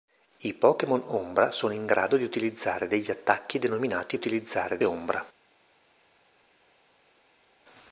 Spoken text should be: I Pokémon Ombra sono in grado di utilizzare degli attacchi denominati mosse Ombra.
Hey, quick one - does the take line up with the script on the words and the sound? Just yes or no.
no